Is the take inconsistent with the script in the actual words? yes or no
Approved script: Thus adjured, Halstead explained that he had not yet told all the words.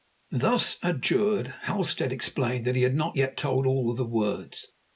no